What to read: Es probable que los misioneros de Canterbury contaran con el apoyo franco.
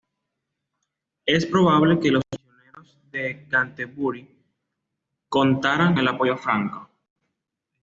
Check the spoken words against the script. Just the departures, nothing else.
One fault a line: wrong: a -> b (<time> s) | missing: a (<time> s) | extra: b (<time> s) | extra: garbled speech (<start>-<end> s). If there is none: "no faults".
missing: con (6.0 s)